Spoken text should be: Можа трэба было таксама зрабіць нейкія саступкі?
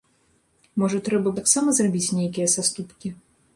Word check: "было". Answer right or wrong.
wrong